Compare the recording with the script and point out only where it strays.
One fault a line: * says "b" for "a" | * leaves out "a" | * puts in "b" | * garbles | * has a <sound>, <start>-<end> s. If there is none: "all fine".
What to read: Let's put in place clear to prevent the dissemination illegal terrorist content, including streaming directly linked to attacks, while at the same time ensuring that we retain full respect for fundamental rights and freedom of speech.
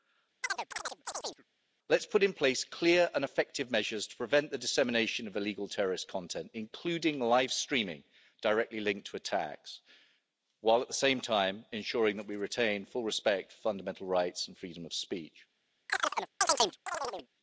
* has a chirp, 0.4-1.4 s
* puts in "and effective measures"
* puts in "of"
* puts in "live"
* has a chirp, 15.9-17.3 s